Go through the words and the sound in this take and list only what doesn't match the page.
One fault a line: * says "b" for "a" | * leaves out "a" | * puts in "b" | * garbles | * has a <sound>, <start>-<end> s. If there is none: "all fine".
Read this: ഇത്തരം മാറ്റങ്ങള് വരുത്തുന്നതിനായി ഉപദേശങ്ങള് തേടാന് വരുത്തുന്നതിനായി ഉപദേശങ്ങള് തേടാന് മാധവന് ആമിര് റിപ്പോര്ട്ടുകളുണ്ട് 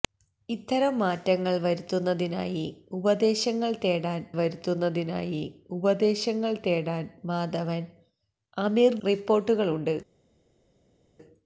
all fine